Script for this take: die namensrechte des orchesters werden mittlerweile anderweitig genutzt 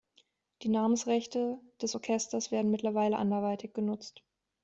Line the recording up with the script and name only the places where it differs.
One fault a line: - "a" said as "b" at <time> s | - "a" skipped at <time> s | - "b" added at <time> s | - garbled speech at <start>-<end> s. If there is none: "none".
none